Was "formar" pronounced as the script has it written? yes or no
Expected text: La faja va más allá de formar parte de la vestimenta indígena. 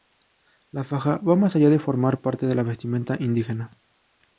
yes